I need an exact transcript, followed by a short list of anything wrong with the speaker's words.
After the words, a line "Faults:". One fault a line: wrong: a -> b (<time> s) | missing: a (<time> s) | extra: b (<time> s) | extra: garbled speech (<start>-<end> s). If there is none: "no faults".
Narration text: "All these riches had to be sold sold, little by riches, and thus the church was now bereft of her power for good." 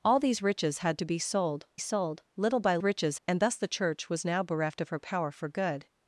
"All these riches had to be sold sold, little by riches, and thus the church was now bereft of her power for good."
Faults:
no faults